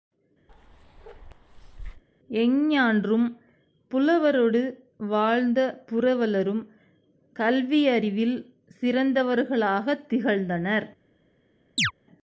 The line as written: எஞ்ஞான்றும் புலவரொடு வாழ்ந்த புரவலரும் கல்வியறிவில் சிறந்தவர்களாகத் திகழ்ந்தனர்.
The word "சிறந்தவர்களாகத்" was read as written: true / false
true